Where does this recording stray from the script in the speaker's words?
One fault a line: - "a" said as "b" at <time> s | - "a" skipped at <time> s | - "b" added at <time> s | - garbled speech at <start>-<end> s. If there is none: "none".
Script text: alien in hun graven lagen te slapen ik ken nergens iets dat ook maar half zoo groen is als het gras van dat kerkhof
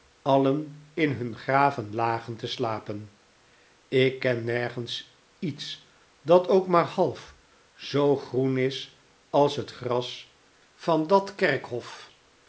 none